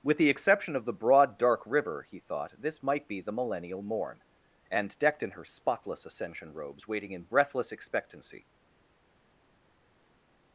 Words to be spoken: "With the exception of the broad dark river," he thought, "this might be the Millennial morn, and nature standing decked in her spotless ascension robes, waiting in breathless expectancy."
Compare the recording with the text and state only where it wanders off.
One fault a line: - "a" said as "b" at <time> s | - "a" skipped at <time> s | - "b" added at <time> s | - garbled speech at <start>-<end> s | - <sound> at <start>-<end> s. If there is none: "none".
- "nature standing" skipped at 5.0 s